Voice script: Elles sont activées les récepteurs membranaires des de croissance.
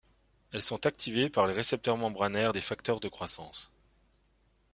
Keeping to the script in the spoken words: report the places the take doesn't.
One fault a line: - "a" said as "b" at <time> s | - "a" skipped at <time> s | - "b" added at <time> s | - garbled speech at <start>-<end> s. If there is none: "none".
- "par" added at 1.3 s
- "facteurs" added at 2.6 s